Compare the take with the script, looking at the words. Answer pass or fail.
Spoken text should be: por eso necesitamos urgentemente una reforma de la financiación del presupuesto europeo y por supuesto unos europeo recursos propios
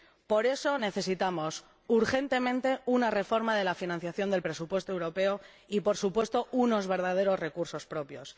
fail